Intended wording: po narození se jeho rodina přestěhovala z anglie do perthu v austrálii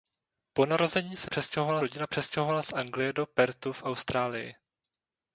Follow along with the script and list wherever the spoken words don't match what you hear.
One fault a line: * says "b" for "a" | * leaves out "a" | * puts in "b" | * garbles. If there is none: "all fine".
* says "přestěhovala" for "jeho"